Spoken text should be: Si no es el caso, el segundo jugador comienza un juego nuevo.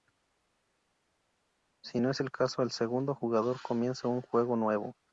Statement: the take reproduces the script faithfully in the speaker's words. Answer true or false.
true